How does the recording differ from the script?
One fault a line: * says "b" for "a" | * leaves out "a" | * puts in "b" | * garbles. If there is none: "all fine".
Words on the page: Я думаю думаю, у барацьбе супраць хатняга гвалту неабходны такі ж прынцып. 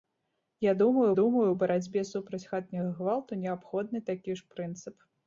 all fine